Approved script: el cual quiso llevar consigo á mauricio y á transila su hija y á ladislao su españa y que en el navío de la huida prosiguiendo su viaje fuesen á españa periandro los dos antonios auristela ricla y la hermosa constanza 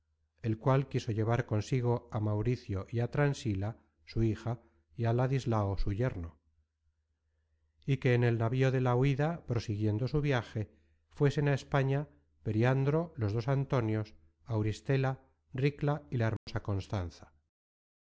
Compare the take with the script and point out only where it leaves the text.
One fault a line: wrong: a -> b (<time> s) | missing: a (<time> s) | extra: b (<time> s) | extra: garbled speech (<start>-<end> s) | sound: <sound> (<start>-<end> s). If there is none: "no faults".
wrong: españa -> yerno (6.0 s)
sound: dropout (16.4-16.5 s)